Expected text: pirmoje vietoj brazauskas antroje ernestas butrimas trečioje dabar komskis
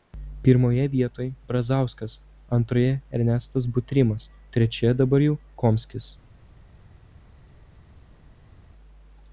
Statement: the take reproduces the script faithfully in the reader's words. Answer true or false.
false